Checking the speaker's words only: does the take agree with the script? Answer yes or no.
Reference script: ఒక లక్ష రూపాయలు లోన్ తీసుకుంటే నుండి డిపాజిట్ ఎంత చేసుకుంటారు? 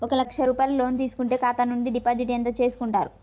no